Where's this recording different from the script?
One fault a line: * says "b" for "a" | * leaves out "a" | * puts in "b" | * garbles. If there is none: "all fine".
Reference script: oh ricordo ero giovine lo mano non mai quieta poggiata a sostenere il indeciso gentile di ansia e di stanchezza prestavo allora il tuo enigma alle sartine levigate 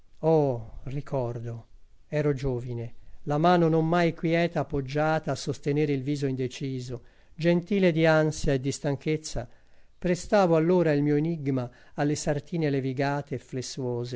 * says "la" for "lo"
* puts in "viso"
* says "mio" for "tuo"